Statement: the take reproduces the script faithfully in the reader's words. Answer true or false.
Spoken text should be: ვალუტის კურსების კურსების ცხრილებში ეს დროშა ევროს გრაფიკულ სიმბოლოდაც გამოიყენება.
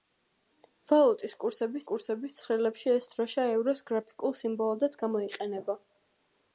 true